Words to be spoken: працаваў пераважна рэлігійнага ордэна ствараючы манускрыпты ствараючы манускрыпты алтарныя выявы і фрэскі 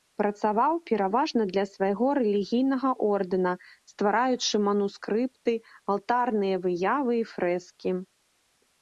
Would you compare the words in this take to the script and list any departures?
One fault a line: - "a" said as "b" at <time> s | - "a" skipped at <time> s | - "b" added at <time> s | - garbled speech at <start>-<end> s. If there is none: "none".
- "для свайго" added at 1.5 s
- "ствараючы манускрыпты" skipped at 5.5 s